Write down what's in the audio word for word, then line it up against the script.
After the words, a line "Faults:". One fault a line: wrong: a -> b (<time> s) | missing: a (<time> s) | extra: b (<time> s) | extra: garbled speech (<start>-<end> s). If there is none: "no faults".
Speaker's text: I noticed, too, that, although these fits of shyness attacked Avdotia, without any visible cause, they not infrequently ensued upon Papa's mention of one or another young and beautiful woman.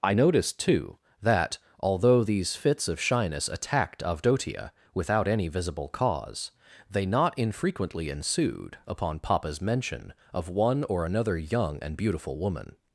I noticed, too, that, although these fits of shyness attacked Avdotia, without any visible cause, they not infrequently ensued upon Papa's mention of one or another young and beautiful woman.
Faults:
no faults